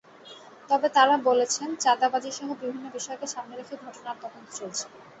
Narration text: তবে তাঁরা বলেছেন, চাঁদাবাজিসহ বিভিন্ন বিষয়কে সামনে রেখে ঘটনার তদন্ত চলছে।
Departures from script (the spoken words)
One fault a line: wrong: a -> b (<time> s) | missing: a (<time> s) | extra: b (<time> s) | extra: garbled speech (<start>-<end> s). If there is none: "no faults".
no faults